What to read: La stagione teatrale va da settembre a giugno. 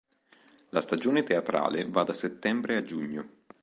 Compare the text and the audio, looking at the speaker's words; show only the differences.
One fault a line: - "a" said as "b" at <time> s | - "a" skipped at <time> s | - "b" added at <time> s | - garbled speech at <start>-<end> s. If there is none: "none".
none